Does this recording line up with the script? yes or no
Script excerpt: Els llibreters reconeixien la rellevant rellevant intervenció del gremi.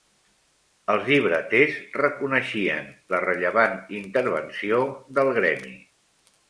no